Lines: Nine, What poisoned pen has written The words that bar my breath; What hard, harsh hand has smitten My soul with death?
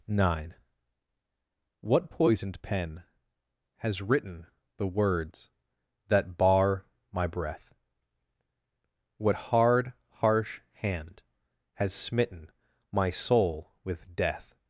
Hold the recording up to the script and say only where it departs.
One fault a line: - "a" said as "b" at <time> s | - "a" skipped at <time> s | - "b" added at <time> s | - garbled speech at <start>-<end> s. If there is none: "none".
none